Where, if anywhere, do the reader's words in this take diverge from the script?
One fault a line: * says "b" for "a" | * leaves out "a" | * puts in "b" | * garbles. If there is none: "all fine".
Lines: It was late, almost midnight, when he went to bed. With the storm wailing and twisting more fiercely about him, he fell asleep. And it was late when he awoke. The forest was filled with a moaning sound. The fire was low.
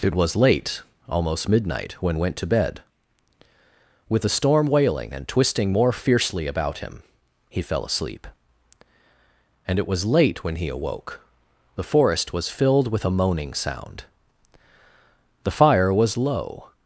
* leaves out "he"